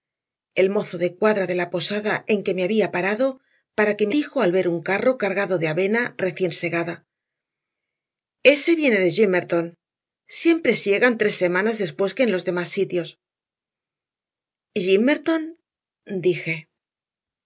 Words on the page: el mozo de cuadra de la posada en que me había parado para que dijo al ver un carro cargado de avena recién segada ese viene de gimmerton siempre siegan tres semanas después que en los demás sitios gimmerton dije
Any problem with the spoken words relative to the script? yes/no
no